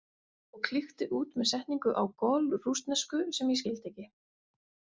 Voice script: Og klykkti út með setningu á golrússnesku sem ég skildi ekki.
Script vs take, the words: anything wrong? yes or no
no